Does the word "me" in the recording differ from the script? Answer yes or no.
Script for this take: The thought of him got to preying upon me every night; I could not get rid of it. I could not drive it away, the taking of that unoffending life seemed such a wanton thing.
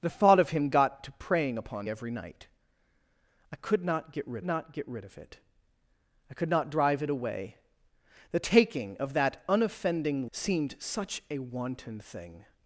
yes